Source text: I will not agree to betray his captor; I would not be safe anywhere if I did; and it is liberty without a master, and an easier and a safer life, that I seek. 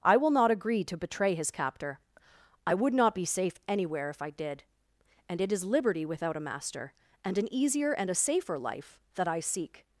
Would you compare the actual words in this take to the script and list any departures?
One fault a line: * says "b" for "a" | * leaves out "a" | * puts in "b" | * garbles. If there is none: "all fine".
all fine